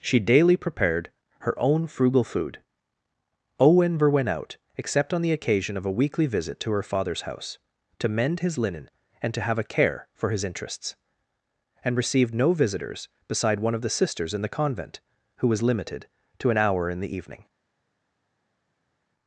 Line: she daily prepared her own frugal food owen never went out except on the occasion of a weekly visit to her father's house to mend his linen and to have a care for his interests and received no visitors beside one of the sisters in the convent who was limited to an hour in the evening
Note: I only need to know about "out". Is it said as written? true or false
true